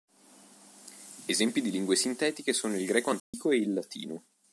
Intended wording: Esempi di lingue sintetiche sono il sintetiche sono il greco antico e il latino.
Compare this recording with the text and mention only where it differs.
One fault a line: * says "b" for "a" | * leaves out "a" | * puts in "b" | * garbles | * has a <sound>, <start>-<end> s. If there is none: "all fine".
* leaves out "sintetiche sono il"
* has a dropout, 3.2-3.3 s